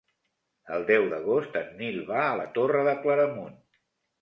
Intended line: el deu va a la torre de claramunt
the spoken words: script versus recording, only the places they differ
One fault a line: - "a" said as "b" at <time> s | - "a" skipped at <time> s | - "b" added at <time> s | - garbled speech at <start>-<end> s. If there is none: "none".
- "d'agost en nil" added at 1.1 s